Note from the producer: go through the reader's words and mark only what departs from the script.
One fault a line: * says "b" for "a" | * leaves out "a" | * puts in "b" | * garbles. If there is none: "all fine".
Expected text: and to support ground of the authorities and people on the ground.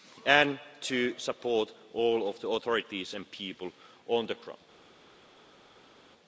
* says "all" for "ground"